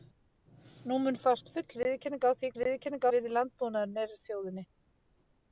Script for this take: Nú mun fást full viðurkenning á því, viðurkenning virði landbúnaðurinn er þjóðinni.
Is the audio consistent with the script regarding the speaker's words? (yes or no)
yes